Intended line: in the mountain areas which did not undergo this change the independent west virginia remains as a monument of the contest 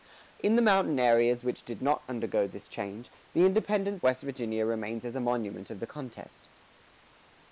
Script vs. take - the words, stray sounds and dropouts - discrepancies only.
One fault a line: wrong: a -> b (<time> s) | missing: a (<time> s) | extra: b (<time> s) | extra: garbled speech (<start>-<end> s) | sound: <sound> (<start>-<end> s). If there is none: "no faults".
no faults